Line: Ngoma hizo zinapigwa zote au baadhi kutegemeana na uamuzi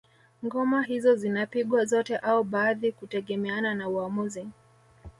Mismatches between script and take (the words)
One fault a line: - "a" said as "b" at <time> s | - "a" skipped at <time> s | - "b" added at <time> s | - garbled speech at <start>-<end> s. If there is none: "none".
none